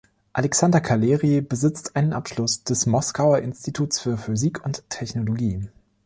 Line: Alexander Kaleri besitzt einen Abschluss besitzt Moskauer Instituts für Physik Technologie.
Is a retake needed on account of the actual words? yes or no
yes